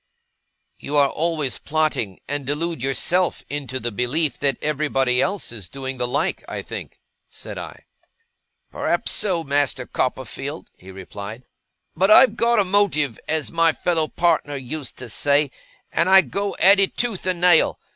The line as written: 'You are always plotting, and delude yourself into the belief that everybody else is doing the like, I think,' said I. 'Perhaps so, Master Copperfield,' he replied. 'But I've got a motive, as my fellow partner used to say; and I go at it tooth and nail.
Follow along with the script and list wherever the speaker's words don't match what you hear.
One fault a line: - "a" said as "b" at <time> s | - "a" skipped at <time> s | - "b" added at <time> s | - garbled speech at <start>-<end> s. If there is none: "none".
none